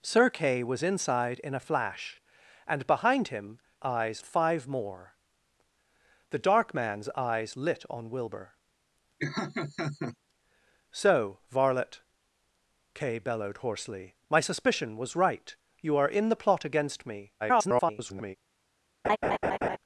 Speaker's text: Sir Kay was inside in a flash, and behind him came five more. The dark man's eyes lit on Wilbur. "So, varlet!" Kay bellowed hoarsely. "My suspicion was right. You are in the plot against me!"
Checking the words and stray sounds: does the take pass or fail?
fail